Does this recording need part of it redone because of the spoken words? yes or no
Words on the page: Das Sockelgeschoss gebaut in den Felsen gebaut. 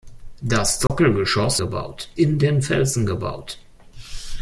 no